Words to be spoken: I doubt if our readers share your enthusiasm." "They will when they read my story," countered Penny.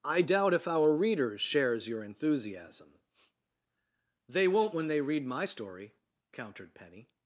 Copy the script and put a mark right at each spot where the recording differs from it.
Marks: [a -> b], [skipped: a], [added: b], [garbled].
I doubt if our readers [share -> shares] your enthusiasm." "They [will -> won't] when they read my story," countered Penny.